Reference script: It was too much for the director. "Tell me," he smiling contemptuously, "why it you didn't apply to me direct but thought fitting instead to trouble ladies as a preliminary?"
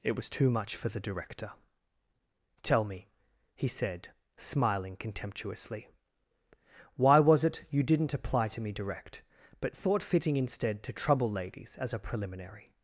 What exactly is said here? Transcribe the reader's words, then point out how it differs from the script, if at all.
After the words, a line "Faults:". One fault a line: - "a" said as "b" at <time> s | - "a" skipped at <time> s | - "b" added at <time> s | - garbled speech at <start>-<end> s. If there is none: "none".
It was too much for the director. "Tell me," he said, smiling contemptuously, "why was it you didn't apply to me direct but thought fitting instead to trouble ladies as a preliminary?"
Faults:
- "said" added at 3.7 s
- "was" added at 7.2 s